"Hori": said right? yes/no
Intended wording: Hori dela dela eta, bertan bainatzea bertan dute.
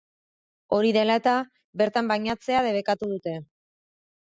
yes